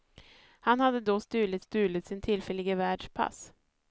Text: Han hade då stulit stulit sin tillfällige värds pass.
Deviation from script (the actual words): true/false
false